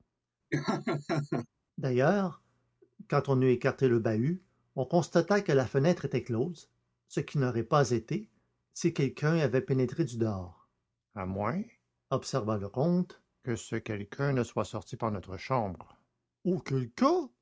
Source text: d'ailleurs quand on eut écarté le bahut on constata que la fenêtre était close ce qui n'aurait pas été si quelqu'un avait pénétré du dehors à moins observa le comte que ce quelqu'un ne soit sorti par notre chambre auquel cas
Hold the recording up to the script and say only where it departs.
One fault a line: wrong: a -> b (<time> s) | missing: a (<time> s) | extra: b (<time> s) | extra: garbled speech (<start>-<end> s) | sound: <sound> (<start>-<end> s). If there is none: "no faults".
sound: laugh (0.5-1.5 s)